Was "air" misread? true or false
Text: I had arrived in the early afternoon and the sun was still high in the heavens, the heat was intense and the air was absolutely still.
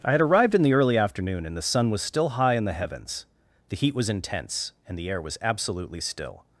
false